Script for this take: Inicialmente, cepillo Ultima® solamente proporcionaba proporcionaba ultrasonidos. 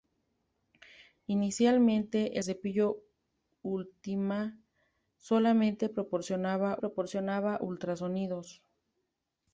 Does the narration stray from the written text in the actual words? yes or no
no